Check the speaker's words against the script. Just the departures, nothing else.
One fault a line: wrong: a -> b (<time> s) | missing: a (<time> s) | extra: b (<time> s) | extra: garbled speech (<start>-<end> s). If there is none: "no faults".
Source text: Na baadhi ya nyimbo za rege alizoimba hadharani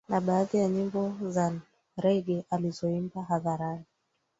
no faults